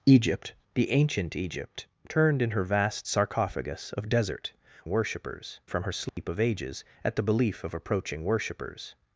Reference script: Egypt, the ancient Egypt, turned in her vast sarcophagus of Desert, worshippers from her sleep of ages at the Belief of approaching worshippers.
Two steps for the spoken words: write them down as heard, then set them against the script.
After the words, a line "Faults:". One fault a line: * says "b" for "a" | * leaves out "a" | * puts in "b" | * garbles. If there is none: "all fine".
Egypt, the ancient Egypt, turned in her vast sarcophagus of Desert, worshippers from her sleep of ages at the Belief of approaching worshippers.
Faults:
all fine